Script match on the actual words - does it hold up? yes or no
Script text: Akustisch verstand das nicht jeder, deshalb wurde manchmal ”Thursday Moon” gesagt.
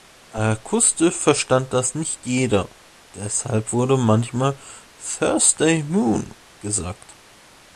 yes